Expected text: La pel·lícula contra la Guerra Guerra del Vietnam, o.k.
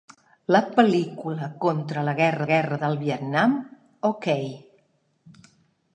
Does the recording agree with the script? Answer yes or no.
yes